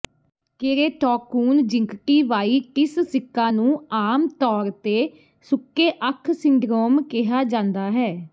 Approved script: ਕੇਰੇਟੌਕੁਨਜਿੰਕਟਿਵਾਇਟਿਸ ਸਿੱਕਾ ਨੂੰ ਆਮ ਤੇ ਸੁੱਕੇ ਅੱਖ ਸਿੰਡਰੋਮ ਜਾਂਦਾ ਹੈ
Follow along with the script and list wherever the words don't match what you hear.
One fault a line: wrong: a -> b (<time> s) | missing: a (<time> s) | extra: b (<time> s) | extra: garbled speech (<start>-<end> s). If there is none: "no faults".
extra: ਤੌਰ (4.4 s)
extra: ਕਿਹਾ (7.1 s)